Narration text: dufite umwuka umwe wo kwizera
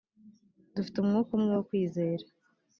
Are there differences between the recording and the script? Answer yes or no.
no